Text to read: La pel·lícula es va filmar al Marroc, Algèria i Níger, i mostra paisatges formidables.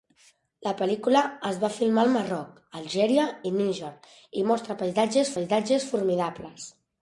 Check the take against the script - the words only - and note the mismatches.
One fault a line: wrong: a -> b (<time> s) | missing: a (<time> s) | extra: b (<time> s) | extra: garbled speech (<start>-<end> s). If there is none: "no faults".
extra: paisatges (5.4 s)